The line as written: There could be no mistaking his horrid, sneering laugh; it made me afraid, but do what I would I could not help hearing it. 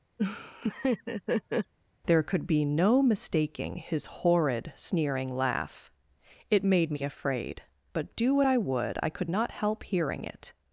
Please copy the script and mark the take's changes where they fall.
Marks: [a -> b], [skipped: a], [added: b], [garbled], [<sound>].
[laugh] There could be no mistaking his horrid, sneering laugh; it made me afraid, but do what I would I could not help hearing it.